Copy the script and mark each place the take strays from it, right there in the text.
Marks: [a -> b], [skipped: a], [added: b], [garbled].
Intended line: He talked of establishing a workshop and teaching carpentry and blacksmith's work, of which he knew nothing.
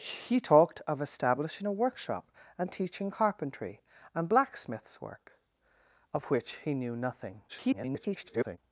He talked of establishing a workshop and teaching carpentry and blacksmith's work, of which he knew nothing. [garbled]